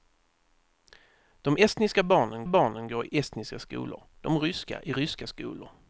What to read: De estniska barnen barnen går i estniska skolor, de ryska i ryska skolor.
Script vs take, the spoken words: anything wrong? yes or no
no